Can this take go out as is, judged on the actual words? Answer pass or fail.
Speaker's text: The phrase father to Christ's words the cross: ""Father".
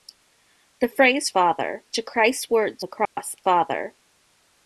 pass